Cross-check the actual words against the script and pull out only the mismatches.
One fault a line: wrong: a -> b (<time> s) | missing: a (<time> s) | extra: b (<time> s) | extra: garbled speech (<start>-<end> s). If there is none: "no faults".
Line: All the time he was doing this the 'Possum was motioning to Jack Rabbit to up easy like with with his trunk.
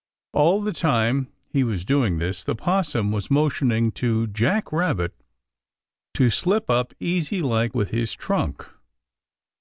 extra: slip (6.3 s)
missing: with (7.9 s)